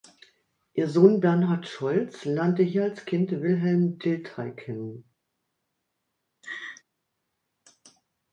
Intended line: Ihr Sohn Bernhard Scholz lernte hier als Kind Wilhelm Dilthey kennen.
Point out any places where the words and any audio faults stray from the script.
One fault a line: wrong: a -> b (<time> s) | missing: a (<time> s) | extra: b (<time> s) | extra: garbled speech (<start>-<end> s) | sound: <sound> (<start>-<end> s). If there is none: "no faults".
sound: laugh (6.4-6.8 s)